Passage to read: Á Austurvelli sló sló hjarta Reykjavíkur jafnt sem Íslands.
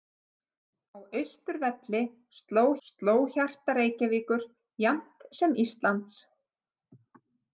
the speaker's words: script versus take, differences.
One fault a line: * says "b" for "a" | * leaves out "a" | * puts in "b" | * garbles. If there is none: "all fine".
all fine